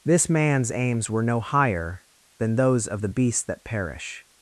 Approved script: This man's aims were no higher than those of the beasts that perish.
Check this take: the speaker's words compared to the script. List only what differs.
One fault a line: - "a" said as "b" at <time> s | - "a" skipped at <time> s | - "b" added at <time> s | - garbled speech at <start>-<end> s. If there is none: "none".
none